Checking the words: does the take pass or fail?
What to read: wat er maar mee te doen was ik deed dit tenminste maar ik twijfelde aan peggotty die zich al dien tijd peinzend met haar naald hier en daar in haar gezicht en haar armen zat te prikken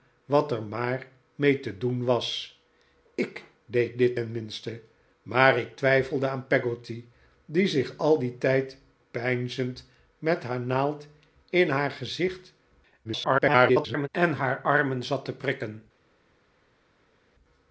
fail